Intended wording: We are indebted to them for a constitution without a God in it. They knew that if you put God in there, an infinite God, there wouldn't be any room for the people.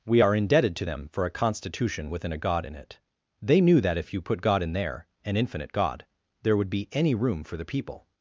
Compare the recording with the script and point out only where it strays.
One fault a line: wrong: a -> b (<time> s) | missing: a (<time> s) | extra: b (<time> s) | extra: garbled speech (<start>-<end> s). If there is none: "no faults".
wrong: without -> within (2.1 s)
wrong: wouldn't -> would (6.6 s)